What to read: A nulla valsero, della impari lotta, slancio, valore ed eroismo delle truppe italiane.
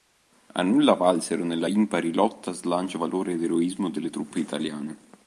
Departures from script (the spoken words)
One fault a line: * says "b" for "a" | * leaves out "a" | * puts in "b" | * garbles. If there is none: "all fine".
* says "nella" for "della"